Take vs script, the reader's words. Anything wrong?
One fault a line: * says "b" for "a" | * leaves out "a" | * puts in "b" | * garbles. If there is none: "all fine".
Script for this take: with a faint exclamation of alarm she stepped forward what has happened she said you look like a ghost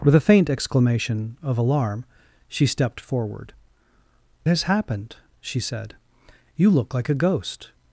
* leaves out "what"